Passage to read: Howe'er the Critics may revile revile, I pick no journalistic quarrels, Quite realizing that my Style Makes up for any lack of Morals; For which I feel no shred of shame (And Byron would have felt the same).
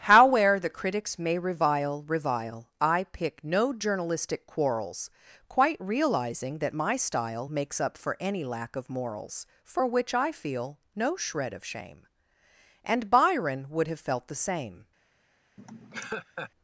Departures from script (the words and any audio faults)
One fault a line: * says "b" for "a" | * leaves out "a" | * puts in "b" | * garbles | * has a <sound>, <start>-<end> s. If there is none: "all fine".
* has a laugh, 15.6-16.5 s